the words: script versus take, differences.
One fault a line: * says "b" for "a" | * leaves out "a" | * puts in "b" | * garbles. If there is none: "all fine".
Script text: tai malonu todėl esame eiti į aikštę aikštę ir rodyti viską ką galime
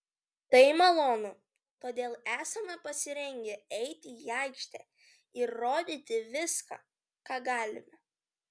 * puts in "pasirengę"
* leaves out "aikštę"